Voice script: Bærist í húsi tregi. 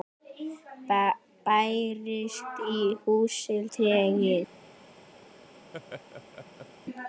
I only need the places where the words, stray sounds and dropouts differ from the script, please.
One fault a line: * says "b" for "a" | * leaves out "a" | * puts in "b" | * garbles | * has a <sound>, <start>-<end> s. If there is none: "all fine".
* has a laugh, 5.7-6.7 s